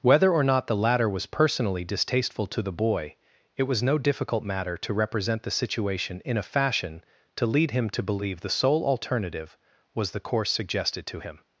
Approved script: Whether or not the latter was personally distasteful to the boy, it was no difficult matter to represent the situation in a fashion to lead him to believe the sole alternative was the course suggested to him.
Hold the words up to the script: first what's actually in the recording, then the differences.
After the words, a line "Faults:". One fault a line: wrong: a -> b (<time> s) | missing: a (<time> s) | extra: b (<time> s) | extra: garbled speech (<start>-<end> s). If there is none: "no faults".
Whether or not the latter was personally distasteful to the boy, it was no difficult matter to represent the situation in a fashion to lead him to believe the sole alternative was the course suggested to him.
Faults:
no faults